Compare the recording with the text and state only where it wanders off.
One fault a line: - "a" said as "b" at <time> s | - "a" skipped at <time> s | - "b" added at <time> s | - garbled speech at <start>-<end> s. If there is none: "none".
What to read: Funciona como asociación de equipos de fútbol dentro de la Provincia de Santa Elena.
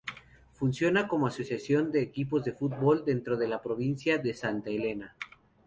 none